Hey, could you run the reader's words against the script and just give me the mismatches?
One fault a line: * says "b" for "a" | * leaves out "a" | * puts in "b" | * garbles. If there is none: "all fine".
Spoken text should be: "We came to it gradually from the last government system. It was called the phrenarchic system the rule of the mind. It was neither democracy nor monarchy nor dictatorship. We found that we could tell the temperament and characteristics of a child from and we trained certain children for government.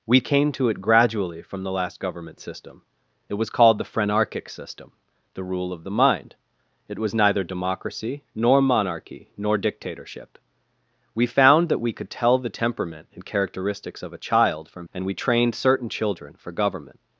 all fine